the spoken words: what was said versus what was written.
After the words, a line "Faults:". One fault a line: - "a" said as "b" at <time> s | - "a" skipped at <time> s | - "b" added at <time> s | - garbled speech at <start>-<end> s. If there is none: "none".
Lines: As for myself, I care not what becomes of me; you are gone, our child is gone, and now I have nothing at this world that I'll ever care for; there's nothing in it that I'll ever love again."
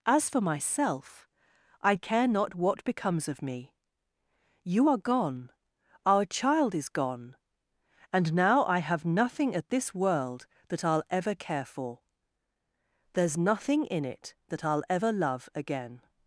As for myself, I care not what becomes of me; you are gone, our child is gone, and now I have nothing at this world that I'll ever care for; there's nothing in it that I'll ever love again."
Faults:
none